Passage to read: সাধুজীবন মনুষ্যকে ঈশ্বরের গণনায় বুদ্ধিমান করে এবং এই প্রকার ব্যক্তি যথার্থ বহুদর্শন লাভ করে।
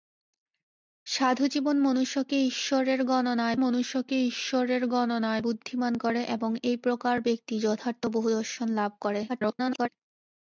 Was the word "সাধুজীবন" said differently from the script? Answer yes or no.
no